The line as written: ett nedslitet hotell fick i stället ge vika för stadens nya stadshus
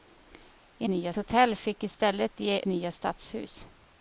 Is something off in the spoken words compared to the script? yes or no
yes